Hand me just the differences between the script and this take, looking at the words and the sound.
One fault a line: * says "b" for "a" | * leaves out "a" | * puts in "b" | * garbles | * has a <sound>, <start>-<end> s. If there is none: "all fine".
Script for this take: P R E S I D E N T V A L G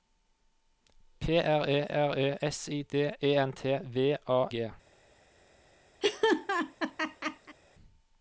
* puts in "R E"
* leaves out "L"
* has a laugh, 6.0-7.6 s